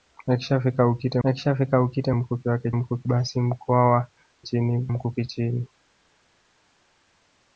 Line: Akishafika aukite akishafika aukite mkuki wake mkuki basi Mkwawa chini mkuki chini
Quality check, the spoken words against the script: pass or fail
pass